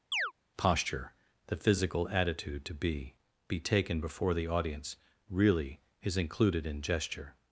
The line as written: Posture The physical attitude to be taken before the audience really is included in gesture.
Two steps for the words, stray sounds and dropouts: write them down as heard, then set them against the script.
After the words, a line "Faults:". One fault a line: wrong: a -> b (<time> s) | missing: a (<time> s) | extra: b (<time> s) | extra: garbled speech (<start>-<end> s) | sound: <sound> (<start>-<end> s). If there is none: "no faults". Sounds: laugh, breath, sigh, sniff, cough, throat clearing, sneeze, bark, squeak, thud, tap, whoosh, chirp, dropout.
Posture The physical attitude to be be taken before the audience really is included in gesture.
Faults:
sound: chirp (0.1-0.3 s)
extra: be (3.5 s)